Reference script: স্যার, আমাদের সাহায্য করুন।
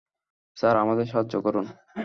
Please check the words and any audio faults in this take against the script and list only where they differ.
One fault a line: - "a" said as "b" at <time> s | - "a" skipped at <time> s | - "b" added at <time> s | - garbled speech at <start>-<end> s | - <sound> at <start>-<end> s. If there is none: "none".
none